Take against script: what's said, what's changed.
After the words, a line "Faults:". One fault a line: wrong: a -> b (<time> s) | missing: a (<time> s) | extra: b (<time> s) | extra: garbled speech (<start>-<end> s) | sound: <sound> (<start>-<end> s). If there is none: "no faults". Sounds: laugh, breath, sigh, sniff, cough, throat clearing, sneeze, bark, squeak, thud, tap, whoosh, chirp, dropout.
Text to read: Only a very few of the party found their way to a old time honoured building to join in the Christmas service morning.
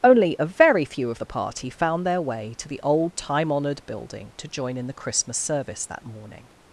Only a very few of the party found their way to the old time honoured building to join in the Christmas service that morning.
Faults:
wrong: a -> the (2.7 s)
extra: that (5.9 s)